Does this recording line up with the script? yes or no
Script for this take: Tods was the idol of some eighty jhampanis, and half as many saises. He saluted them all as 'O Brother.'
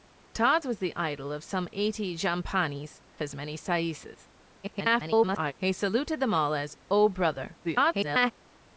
no